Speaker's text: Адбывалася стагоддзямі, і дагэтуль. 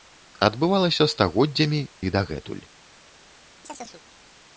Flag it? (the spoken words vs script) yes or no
no